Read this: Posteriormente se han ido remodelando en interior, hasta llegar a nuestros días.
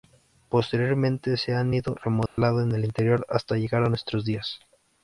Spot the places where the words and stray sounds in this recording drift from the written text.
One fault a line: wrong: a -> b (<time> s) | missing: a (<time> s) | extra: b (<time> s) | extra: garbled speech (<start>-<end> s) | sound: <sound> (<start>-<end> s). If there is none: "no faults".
sound: dropout (2.3-2.4 s)
extra: el (2.7 s)